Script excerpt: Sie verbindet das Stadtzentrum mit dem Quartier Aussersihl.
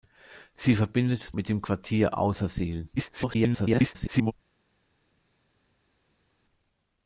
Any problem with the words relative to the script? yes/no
yes